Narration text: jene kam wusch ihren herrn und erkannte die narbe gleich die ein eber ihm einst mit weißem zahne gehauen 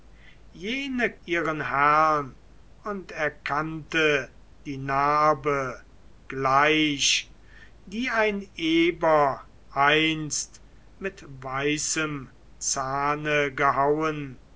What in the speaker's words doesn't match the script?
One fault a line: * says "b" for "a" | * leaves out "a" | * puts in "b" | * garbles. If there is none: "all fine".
* leaves out "kam wusch"
* leaves out "ihm"